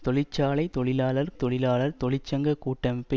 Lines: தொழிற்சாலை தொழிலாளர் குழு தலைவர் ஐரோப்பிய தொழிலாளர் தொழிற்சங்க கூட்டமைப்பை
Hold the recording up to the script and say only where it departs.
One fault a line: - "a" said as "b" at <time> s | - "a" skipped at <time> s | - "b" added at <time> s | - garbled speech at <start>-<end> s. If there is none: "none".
- "குழு தலைவர் ஐரோப்பிய" skipped at 1.3 s